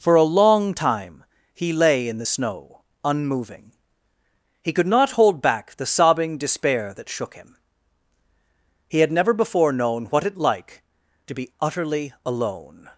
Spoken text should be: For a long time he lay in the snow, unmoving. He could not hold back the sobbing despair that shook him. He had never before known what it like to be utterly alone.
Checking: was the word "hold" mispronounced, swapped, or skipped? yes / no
no